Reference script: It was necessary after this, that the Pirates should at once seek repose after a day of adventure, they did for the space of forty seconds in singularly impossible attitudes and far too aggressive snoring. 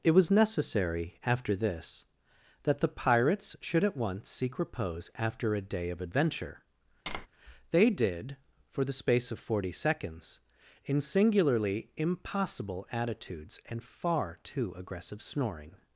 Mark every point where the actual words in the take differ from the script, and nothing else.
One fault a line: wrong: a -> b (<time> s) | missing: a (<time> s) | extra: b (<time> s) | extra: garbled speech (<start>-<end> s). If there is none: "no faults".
no faults